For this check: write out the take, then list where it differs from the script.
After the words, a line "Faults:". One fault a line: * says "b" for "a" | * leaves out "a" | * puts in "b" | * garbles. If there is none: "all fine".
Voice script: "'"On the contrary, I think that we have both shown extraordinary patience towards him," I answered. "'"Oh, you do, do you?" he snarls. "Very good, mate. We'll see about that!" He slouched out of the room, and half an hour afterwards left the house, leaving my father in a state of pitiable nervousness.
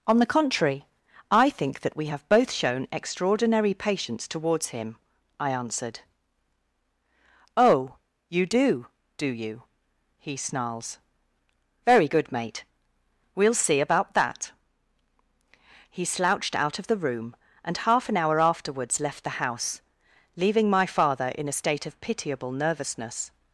"'"On the contrary, I think that we have both shown extraordinary patience towards him," I answered. "'"Oh, you do, do you?" he snarls. "Very good, mate. We'll see about that!" He slouched out of the room, and half an hour afterwards left the house, leaving my father in a state of pitiable nervousness.
Faults:
all fine